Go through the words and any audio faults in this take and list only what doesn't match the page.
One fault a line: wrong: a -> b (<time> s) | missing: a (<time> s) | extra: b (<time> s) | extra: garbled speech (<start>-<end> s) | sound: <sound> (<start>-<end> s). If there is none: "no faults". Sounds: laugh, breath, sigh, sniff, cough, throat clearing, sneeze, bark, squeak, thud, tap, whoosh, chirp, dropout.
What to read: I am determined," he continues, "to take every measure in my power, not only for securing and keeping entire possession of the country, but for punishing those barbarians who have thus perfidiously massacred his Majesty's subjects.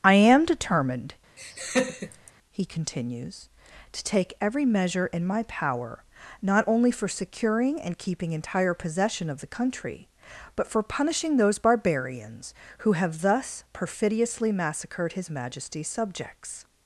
sound: laugh (1.4-2.3 s)